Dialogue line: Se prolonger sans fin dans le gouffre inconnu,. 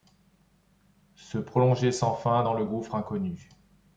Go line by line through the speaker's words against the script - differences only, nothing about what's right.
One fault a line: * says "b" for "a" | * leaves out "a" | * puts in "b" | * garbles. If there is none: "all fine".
all fine